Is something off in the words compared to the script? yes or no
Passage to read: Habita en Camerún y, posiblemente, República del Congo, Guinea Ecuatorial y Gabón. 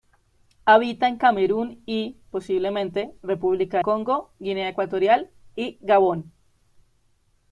yes